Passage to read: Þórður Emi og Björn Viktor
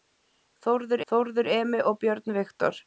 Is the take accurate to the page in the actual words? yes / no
no